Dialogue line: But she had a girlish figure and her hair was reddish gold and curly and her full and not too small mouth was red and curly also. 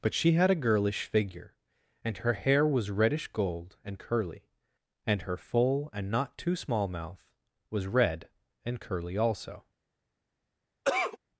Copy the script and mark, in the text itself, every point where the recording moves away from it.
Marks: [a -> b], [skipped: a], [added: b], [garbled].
But she had a girlish figure and her hair was reddish gold and curly and her full and not too small mouth was red and curly also.